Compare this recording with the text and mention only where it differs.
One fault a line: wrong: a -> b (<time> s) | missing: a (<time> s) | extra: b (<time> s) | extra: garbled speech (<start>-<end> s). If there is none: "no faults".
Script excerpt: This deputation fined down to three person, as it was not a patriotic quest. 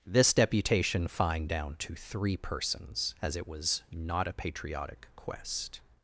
wrong: person -> persons (2.4 s)